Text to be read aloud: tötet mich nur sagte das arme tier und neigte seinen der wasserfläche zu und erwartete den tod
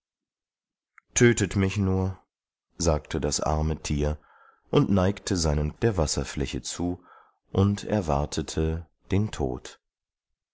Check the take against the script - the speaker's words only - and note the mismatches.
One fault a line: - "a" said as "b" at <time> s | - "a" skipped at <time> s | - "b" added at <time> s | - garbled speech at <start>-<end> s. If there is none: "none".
none